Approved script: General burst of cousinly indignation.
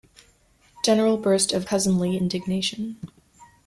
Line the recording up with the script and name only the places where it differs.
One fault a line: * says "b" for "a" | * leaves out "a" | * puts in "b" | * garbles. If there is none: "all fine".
all fine